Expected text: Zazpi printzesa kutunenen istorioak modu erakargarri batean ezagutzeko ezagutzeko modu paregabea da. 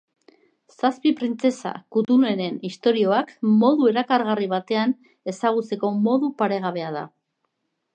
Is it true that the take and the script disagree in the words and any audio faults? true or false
true